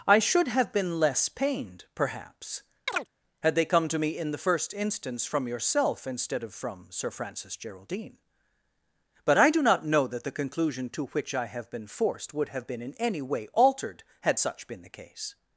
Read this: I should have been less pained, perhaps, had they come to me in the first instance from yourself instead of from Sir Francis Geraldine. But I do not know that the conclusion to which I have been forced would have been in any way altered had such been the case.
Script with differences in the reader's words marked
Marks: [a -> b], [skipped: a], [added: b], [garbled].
I should have been less pained, perhaps, had they come to me in the first instance from yourself instead of from Sir Francis Geraldine. But I do not know that the conclusion to which I have been forced would have been in any way altered had such been the case.